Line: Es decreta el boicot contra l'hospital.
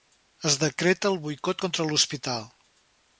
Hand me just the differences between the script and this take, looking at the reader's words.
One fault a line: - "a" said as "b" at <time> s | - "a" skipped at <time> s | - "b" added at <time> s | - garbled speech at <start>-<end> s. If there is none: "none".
none